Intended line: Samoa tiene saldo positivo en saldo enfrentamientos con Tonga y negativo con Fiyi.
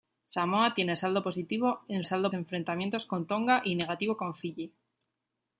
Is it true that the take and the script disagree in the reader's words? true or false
false